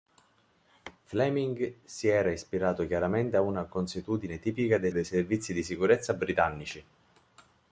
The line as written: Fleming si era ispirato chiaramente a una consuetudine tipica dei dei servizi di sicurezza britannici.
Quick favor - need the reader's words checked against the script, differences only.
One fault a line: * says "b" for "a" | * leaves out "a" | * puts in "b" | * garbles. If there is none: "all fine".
all fine